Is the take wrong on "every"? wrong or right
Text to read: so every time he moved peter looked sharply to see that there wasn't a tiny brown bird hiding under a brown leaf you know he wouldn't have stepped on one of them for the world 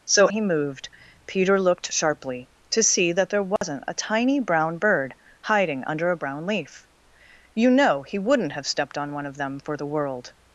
wrong